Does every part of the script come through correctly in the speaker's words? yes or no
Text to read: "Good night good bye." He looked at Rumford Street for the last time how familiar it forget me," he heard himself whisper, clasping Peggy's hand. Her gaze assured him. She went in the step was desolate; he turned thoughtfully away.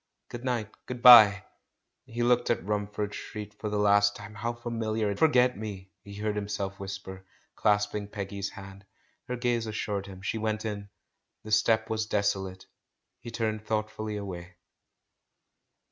yes